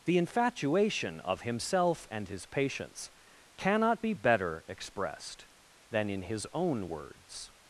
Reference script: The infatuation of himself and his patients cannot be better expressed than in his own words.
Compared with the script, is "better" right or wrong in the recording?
right